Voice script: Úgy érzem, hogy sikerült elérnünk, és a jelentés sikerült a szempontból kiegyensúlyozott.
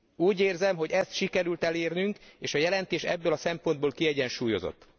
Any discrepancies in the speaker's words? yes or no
yes